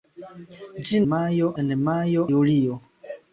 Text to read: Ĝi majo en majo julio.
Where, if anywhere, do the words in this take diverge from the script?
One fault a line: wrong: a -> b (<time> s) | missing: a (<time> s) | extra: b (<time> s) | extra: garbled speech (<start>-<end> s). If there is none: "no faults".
no faults